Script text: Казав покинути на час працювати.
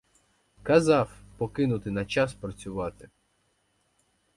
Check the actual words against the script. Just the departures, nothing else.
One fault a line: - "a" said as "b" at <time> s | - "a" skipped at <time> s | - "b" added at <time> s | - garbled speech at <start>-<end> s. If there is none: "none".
none